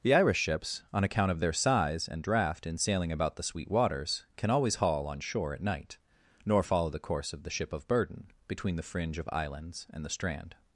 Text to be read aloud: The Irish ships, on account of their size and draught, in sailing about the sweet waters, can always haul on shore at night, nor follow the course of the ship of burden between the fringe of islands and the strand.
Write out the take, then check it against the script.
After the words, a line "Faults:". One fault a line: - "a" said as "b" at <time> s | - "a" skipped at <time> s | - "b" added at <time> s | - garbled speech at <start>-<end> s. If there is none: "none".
The Irish ships, on account of their size and draught, in sailing about the sweet waters, can always haul on shore at night, nor follow the course of the ship of burden between the fringe of islands and the strand.
Faults:
none